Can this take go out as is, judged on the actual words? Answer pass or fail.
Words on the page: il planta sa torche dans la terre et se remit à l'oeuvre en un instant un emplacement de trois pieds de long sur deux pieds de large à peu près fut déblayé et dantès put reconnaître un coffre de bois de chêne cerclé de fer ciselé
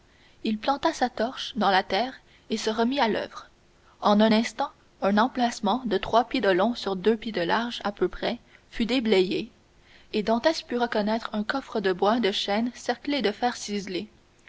pass